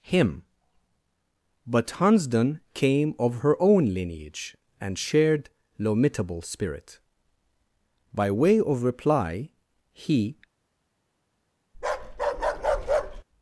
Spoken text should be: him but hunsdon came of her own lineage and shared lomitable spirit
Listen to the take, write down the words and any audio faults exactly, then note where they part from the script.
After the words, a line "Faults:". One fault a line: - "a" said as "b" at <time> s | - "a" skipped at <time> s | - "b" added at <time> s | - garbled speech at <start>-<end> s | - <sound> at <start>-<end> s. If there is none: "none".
him but hunsdon came of her own lineage and shared lomitable spirit by way of reply he
Faults:
- "by way of reply he" added at 8.1 s
- bark at 11.7-13.2 s